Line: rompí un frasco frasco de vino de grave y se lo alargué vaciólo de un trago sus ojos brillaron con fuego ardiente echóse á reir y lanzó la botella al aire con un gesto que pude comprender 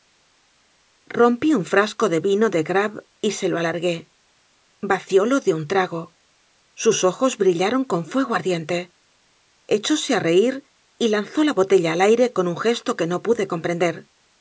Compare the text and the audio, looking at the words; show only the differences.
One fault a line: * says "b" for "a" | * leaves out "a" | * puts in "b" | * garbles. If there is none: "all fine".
* leaves out "frasco"
* puts in "no"